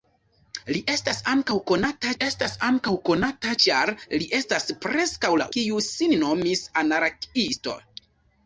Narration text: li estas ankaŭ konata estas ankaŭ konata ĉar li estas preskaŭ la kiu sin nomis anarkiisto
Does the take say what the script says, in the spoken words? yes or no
yes